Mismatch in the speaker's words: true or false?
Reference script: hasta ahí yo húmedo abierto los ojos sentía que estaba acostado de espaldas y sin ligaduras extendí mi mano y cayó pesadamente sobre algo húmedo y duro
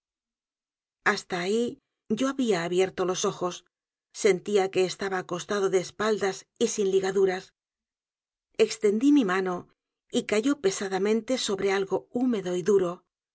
true